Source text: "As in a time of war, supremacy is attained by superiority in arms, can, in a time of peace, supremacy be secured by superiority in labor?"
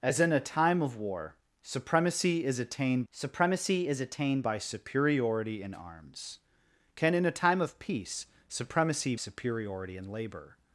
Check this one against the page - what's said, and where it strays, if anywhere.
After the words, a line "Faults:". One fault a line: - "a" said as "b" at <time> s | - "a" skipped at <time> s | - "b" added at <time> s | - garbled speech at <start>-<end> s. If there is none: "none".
"As in a time of war, supremacy is attained supremacy is attained by superiority in arms, can, in a time of peace, supremacy superiority in labor?"
Faults:
- "supremacy is attained" added at 3.1 s
- "be secured by" skipped at 9.1 s